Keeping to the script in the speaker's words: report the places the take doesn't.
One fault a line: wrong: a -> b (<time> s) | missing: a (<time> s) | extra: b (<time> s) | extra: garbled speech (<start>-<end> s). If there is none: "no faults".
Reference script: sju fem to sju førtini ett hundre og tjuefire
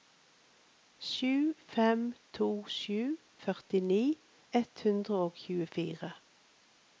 no faults